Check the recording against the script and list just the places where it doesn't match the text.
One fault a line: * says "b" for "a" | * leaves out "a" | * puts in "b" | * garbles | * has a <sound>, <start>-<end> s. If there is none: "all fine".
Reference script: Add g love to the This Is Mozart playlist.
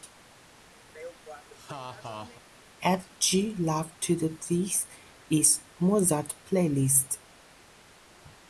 * has a laugh, 0.9-2.4 s